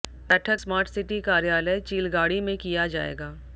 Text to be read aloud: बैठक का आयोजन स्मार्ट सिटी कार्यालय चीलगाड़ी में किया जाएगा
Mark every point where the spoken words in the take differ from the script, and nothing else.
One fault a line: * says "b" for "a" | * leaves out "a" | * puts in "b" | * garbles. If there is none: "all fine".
* leaves out "का आयोजन"